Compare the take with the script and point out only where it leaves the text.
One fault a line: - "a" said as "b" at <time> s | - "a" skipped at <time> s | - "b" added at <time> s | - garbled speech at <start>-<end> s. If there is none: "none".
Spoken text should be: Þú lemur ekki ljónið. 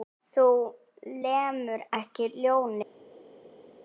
none